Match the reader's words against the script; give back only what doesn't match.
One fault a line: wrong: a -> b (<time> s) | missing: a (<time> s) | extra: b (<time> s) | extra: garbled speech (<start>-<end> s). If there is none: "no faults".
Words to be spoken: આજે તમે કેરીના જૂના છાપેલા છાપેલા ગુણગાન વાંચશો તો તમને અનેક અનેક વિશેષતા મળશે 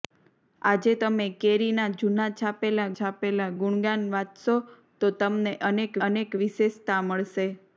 no faults